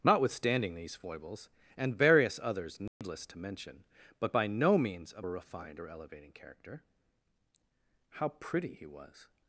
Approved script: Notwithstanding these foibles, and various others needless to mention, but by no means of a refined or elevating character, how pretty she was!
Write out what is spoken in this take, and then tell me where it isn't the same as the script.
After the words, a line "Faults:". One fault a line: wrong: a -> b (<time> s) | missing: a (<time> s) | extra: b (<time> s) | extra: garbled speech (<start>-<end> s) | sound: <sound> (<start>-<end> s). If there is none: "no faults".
Notwithstanding these foibles, and various others needless to mention, but by no means of a refined or elevating character, how pretty he was!
Faults:
sound: dropout (2.9-3.0 s)
wrong: she -> he (8.7 s)